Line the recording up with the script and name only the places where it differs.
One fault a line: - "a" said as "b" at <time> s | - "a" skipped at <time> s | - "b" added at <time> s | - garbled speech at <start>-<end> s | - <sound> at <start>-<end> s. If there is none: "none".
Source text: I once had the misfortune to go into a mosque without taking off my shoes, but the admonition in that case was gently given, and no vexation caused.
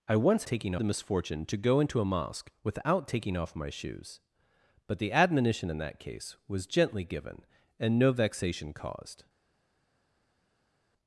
- "had" said as "taking" at 0.5 s